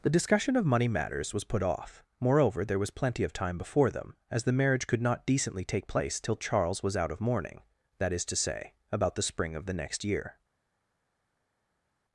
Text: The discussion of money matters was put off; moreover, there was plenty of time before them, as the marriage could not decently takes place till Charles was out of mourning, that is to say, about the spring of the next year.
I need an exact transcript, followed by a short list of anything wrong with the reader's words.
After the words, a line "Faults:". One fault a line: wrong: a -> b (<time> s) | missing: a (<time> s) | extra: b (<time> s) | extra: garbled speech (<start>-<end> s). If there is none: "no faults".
The discussion of money matters was put off; moreover, there was plenty of time before them, as the marriage could not decently take place till Charles was out of mourning, that is to say, about the spring of the next year.
Faults:
wrong: takes -> take (5.6 s)